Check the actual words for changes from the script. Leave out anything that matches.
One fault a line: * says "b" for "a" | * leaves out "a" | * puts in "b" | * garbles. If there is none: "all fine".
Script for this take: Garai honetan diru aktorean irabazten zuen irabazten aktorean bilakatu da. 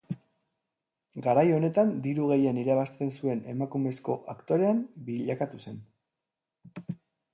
* says "gehien" for "aktorean"
* says "emakumezko" for "irabazten"
* says "zen" for "da"